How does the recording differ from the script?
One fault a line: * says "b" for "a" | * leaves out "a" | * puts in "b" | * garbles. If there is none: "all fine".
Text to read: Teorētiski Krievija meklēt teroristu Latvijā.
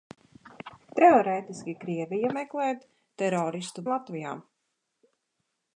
all fine